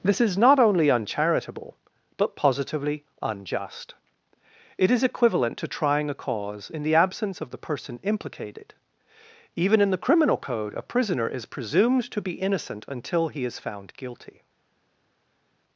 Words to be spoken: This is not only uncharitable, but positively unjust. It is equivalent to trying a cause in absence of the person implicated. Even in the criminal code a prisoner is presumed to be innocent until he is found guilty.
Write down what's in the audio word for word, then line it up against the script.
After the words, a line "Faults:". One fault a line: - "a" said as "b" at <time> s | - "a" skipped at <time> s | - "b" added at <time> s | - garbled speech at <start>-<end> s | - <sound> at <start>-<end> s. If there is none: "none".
This is not only uncharitable, but positively unjust. It is equivalent to trying a cause in the absence of the person implicated. Even in the criminal code a prisoner is presumed to be innocent until he is found guilty.
Faults:
- "the" added at 6.8 s